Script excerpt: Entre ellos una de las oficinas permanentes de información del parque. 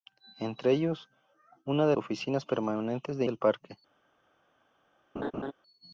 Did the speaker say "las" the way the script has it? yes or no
no